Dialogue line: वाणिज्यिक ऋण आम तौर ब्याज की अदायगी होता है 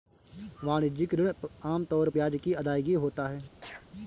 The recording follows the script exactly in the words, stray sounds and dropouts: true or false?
false